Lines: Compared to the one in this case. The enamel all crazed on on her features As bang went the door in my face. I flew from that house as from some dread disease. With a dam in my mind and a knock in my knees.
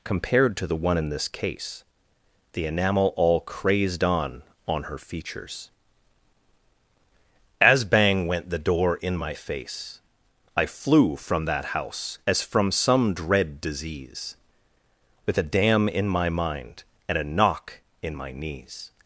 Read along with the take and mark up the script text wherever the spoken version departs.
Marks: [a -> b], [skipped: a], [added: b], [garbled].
Compared to the one in this case. The enamel all crazed on on her features As bang went the door in my face. I flew from that house as from some dread disease. With a dam in my mind and a knock in my knees.